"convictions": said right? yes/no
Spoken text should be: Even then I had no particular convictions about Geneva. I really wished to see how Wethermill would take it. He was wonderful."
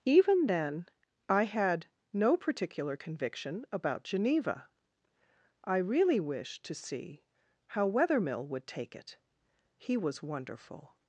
no